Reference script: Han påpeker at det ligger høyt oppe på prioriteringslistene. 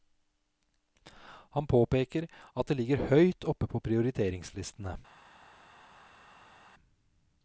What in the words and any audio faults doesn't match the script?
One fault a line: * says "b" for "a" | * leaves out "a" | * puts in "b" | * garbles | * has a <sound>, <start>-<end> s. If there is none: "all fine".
all fine